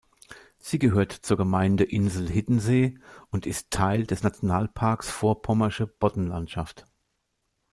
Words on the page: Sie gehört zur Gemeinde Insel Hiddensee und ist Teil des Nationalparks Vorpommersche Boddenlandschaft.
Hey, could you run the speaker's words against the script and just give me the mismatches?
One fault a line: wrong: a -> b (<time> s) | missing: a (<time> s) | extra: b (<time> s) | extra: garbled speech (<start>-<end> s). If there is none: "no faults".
no faults